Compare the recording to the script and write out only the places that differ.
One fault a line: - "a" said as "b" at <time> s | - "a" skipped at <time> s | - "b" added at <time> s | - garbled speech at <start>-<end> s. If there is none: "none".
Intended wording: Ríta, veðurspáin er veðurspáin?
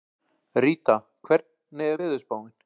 - "veðurspáin" said as "hvernig" at 1.3 s